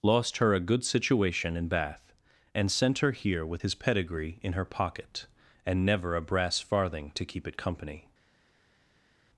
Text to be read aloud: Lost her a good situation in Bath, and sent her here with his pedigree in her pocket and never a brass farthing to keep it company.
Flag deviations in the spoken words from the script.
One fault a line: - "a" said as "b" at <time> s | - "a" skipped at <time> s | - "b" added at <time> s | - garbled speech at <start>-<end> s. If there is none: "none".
none